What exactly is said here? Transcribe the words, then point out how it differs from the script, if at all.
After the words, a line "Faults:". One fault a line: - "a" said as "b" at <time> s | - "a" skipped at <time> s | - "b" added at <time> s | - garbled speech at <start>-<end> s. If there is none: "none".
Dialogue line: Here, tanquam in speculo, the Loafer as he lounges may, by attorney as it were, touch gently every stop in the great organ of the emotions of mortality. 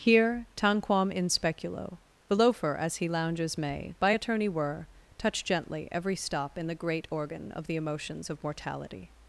Here, tanquam in speculo, the Loafer as he lounges may, by attorney were, touch gently every stop in the great organ of the emotions of mortality.
Faults:
- "as it" skipped at 4.5 s